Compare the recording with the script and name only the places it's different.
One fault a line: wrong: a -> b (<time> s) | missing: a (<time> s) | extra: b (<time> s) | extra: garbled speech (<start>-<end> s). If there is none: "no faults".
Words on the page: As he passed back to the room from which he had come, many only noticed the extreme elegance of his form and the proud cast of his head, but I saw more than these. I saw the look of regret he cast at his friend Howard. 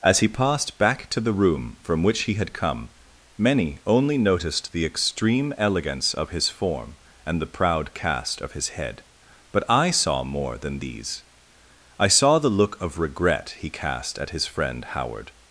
no faults